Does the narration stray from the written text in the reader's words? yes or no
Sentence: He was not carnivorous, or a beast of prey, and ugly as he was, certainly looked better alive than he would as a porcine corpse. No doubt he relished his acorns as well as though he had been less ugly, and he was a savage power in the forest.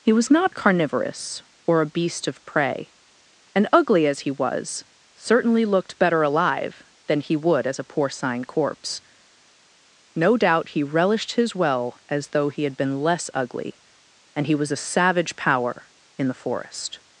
yes